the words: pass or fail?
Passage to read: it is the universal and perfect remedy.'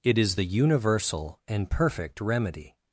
pass